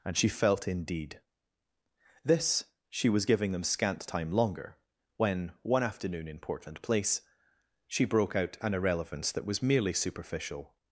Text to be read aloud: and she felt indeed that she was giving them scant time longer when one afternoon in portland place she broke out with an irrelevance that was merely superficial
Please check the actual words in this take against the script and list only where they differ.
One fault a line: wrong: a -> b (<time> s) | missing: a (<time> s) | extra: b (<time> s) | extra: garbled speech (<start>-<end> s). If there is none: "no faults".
wrong: that -> this (2.2 s)
missing: with (8.6 s)